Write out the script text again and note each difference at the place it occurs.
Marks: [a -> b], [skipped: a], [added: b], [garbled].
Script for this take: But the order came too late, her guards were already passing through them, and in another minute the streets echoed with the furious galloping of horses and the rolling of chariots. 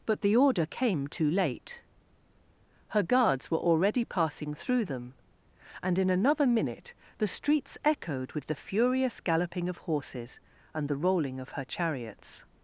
But the order came too late, her guards were already passing through them, and in another minute the streets echoed with the furious galloping of horses and the rolling of [added: her] chariots.